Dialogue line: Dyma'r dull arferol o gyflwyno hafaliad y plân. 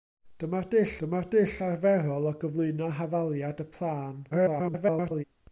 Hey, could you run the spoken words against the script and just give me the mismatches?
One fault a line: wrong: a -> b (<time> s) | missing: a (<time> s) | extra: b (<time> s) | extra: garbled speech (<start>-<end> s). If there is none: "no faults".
extra: dyma'r dull (1.0 s)
extra: garbled speech (4.3-5.2 s)